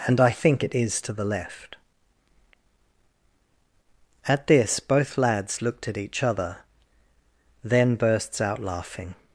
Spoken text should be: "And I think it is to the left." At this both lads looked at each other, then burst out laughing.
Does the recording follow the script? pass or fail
fail